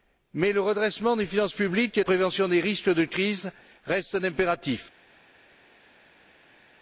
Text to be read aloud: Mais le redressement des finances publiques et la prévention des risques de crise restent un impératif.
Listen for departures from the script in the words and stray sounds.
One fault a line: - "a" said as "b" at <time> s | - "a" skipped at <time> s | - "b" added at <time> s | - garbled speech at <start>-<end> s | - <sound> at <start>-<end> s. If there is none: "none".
- "la" skipped at 2.0 s